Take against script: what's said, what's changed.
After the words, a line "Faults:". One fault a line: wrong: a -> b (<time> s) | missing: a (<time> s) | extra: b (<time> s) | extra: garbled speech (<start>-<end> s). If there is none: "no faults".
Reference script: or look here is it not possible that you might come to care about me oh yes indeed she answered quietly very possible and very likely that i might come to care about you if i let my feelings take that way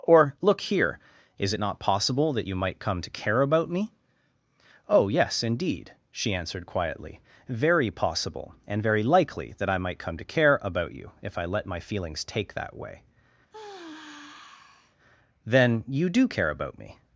or look here is it not possible that you might come to care about me oh yes indeed she answered quietly very possible and very likely that i might come to care about you if i let my feelings take that way then you do care about me
Faults:
extra: then you do care about me (15.4 s)